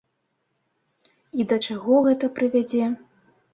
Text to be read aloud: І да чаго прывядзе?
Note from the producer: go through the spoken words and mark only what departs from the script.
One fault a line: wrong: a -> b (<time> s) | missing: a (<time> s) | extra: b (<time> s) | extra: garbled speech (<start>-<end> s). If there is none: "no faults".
extra: гэта (2.1 s)